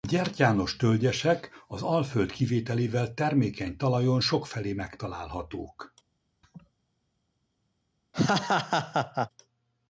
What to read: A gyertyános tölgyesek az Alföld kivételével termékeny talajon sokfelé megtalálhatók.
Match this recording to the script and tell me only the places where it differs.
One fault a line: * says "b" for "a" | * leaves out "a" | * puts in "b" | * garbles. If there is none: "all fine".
all fine